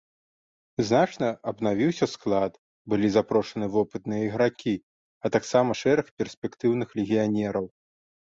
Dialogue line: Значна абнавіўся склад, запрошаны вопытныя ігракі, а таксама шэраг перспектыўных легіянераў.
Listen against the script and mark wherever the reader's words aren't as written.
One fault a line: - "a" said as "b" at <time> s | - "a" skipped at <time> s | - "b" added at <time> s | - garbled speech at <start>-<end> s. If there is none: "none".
- "былі" added at 2.9 s